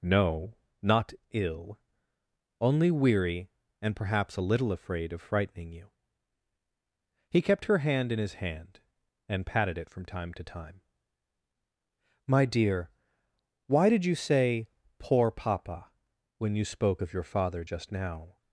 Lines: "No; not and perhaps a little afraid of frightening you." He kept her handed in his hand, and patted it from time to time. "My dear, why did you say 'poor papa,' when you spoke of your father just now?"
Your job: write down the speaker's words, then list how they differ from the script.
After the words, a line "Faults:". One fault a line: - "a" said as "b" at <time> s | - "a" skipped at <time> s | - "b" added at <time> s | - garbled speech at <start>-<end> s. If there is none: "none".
"No; not ill. Only weary, and perhaps a little afraid of frightening you." He kept her hand in his hand, and patted it from time to time. "My dear, why did you say 'poor papa,' when you spoke of your father just now?"
Faults:
- "ill Only weary" added at 1.3 s
- "handed" said as "hand" at 7.8 s